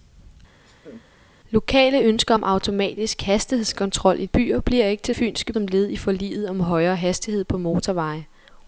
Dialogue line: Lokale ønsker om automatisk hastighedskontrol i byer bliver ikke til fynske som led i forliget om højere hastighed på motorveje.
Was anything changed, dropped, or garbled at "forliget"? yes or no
no